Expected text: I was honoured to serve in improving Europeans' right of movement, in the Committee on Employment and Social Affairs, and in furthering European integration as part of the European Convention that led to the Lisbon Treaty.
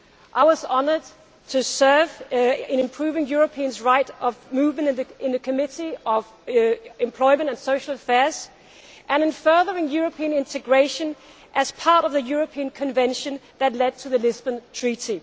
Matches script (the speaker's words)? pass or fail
pass